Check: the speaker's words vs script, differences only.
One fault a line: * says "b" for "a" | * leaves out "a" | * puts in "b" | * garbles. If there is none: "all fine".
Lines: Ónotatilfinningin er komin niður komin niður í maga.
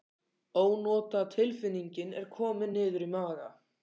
* leaves out "komin niður"